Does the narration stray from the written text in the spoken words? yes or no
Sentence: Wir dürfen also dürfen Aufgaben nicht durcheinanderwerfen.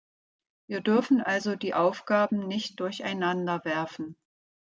yes